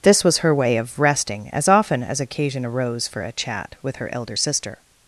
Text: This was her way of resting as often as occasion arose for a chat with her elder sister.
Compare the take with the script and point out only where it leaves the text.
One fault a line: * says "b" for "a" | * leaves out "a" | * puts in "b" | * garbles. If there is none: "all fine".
all fine